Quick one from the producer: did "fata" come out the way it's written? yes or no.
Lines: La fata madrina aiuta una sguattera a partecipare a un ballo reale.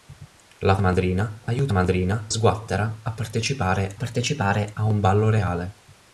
no